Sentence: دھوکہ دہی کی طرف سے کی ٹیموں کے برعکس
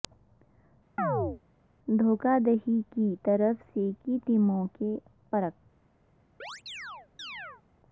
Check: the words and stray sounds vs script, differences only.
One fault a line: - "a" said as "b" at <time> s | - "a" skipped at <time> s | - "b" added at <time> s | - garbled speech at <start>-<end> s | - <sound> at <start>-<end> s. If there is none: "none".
- chirp at 1.0-1.4 s
- chirp at 6.4-7.6 s